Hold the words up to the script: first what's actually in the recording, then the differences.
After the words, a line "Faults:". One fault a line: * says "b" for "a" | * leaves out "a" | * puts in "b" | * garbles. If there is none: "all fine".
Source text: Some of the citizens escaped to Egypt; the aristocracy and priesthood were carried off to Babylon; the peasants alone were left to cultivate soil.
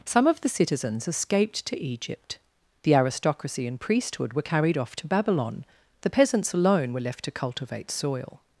Some of the citizens escaped to Egypt; the aristocracy and priesthood were carried off to Babylon; the peasants alone were left to cultivate soil.
Faults:
all fine